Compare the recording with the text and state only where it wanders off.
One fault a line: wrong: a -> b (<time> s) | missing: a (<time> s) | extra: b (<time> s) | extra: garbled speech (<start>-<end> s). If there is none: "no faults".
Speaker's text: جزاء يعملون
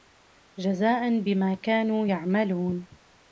extra: بما كانوا (1.2 s)